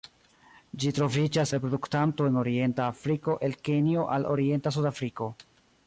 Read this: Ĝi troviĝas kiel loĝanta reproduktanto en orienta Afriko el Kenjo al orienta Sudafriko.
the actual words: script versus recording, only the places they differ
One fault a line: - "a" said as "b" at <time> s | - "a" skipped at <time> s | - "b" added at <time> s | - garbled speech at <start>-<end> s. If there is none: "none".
- "kiel loĝanta" skipped at 1.5 s